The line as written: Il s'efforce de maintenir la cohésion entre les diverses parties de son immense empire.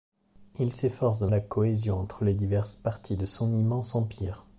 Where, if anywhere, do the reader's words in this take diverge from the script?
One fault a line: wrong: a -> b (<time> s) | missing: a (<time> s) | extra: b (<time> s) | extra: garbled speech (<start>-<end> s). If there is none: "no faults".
missing: maintenir (1.3 s)